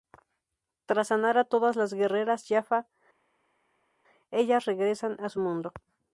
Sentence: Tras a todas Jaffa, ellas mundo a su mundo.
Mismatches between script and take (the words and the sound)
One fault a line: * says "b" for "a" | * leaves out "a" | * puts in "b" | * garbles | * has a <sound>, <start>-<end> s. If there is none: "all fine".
* puts in "sanar"
* puts in "las guerreras"
* says "regresan" for "mundo"